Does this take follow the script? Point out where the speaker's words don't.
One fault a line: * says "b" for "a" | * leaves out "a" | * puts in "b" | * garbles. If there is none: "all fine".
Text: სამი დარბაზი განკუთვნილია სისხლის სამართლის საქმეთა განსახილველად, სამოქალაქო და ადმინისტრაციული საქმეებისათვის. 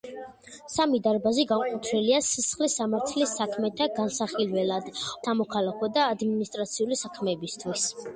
all fine